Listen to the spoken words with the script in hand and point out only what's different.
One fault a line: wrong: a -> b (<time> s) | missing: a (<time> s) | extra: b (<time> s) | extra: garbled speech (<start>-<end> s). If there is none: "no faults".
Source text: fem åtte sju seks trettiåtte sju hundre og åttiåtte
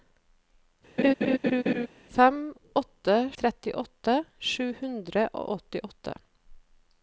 missing: sju seks (3.2 s)